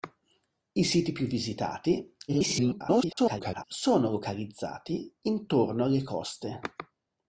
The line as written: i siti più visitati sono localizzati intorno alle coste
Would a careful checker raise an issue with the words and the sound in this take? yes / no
yes